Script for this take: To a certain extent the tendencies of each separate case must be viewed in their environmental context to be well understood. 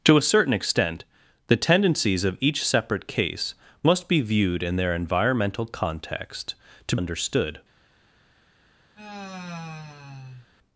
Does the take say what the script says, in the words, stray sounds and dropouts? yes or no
no